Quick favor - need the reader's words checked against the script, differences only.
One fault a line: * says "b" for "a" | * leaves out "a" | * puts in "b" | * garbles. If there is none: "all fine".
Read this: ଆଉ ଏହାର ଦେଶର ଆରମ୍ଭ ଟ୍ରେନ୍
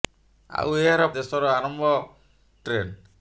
all fine